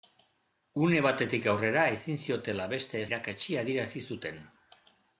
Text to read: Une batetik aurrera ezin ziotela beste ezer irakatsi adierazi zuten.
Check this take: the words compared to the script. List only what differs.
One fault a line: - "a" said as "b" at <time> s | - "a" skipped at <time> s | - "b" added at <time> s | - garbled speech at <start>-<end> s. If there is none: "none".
- "ezer" skipped at 3.0 s